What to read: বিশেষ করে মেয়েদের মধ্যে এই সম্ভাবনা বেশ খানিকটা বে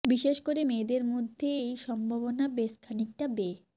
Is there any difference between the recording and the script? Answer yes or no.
no